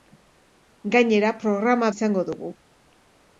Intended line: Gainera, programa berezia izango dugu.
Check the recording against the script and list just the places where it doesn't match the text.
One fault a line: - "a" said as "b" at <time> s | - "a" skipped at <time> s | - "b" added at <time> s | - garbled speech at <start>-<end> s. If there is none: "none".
- "berezia" skipped at 1.9 s